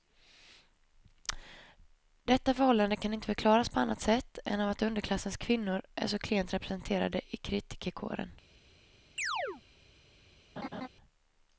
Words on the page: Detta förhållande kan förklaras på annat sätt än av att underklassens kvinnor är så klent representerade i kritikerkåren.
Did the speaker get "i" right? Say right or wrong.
right